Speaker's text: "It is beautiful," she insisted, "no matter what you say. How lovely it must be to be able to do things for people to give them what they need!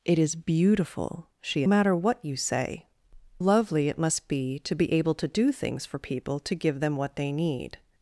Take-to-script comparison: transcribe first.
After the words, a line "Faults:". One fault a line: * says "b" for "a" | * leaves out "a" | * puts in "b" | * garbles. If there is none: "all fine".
"It is beautiful," she matter what you say. Lovely it must be to be able to do things for people to give them what they need!
Faults:
* leaves out "insisted no"
* leaves out "How"